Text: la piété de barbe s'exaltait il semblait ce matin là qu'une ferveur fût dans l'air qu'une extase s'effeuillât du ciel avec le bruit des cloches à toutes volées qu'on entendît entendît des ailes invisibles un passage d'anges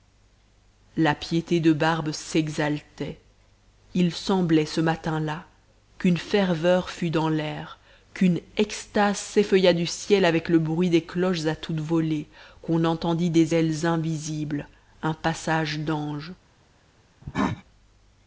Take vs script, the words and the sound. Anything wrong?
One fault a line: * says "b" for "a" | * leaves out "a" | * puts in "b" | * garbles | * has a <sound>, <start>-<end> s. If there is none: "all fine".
* leaves out "entendît"
* has a cough, 17.2-17.6 s